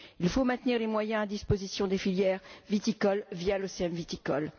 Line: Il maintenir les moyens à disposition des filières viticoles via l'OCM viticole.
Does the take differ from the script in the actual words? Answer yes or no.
yes